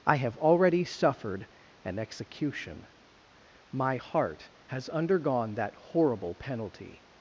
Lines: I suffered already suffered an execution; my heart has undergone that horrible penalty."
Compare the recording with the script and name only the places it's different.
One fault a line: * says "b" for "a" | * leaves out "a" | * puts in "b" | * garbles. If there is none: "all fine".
* says "have" for "suffered"